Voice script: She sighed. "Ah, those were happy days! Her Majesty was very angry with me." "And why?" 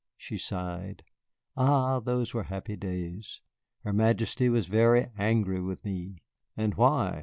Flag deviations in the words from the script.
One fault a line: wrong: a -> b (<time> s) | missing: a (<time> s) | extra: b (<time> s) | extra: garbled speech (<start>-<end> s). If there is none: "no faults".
no faults